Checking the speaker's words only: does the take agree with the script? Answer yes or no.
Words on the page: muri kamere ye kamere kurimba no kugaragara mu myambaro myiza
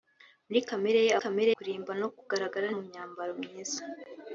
yes